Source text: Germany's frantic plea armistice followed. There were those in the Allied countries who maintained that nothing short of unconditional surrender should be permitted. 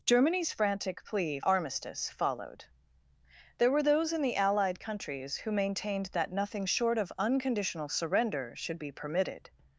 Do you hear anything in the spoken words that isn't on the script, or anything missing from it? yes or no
no